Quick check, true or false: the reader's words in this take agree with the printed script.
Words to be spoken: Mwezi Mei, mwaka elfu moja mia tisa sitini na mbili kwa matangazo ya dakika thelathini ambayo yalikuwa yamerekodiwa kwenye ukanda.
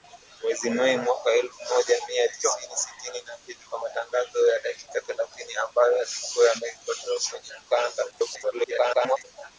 false